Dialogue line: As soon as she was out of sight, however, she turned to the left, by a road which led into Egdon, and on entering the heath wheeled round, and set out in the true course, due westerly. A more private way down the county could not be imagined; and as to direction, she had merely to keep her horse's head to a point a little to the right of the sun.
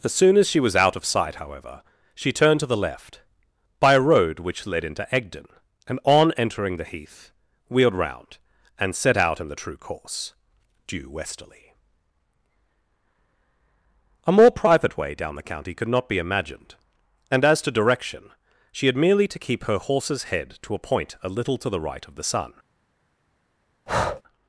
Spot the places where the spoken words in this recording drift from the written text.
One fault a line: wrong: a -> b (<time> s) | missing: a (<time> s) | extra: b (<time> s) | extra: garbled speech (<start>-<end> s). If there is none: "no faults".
no faults